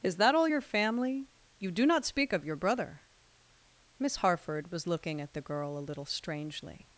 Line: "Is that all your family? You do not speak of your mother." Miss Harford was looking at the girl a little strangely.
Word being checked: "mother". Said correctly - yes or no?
no